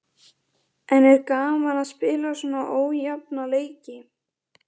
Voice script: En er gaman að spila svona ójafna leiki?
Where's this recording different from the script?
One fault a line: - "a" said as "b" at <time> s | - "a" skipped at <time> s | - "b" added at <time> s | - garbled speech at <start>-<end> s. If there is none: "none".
none